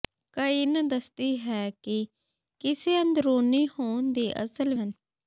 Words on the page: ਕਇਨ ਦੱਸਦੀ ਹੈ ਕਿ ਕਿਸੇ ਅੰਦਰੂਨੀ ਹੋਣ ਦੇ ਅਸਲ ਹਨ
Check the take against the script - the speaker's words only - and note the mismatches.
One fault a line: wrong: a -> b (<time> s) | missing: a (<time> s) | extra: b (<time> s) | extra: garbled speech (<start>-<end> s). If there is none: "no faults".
no faults